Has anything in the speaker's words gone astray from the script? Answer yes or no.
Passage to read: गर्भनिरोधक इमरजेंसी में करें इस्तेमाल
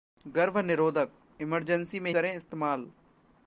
no